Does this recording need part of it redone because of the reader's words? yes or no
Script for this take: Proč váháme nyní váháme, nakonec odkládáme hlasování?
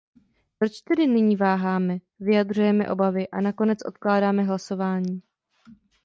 yes